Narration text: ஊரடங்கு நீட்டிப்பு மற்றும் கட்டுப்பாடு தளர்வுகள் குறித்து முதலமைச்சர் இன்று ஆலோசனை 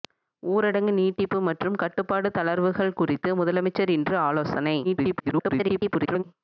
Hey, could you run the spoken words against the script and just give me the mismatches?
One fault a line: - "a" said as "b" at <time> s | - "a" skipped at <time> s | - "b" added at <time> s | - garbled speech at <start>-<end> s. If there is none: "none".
- garbled speech at 4.8-6.2 s